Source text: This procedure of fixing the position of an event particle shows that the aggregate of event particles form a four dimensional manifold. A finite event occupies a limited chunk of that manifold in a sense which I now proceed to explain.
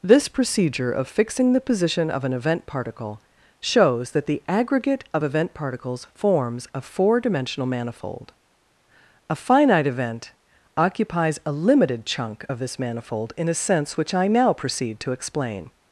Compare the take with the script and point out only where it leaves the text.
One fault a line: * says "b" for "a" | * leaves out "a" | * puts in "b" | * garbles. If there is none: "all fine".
* says "forms" for "form"
* says "this" for "that"